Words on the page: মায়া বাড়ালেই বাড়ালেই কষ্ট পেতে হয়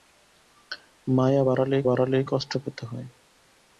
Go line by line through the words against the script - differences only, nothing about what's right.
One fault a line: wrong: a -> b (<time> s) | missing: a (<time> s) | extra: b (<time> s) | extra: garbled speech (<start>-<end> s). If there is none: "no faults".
no faults